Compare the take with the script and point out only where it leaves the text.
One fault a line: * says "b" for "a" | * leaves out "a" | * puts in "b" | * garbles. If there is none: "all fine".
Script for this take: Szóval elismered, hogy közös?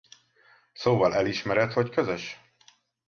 all fine